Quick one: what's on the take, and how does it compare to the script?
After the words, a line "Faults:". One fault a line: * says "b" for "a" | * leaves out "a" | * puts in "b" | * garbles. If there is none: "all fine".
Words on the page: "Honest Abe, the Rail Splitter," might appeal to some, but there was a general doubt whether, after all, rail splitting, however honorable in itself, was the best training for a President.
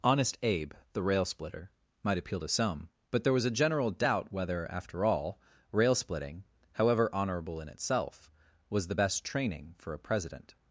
"Honest Abe, the Rail Splitter," might appeal to some, but there was a general doubt whether, after all, rail splitting, however honorable in itself, was the best training for a President.
Faults:
all fine